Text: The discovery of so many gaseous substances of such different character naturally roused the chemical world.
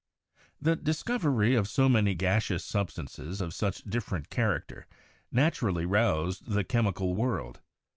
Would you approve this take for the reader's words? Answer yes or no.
yes